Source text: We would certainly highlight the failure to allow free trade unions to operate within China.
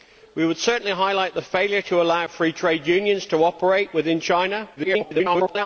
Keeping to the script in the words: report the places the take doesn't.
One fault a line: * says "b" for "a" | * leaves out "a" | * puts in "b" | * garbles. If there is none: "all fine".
* garbles